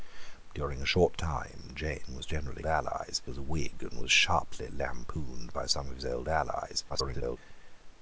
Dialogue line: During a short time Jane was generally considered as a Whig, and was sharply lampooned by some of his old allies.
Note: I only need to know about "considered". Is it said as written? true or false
false